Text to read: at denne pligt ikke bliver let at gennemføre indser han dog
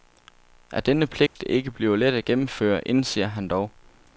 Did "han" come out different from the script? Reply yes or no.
no